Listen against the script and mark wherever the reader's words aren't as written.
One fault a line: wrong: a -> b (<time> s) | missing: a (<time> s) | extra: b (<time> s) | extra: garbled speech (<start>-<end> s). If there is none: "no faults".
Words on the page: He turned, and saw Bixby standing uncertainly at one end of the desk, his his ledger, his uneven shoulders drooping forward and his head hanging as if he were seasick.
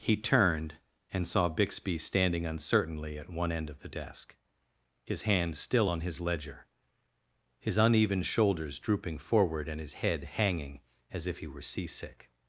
extra: hand still on (5.2 s)